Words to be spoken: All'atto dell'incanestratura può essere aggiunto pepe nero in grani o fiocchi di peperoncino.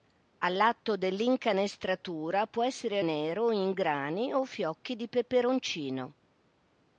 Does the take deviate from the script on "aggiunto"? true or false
true